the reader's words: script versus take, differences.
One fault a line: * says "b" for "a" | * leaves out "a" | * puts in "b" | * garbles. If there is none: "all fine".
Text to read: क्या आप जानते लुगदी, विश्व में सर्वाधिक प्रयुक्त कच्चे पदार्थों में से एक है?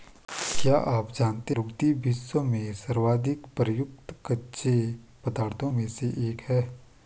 all fine